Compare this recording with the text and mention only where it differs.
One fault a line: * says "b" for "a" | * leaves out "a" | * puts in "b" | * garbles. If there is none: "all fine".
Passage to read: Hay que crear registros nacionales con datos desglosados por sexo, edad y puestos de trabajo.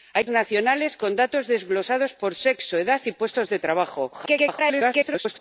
* leaves out "que crear registros"
* garbles